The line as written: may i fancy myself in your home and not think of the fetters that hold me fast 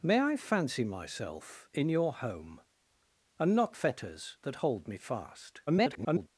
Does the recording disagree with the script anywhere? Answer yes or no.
yes